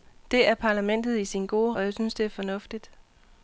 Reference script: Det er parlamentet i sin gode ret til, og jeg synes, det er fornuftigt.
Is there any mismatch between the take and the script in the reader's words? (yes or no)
yes